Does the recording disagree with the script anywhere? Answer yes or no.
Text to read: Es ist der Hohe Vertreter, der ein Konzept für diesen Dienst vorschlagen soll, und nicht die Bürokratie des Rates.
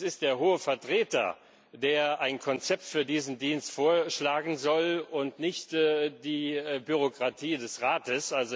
no